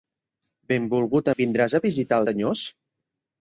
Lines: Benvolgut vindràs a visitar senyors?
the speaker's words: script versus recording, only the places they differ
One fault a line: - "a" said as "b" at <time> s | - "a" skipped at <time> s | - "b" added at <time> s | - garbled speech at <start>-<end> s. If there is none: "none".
none